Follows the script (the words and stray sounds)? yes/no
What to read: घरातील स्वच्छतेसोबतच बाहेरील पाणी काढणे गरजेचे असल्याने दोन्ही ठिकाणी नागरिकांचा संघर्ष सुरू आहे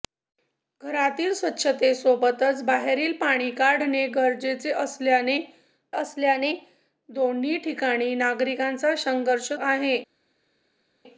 no